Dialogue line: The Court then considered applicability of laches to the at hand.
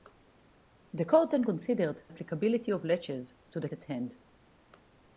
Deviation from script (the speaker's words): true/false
false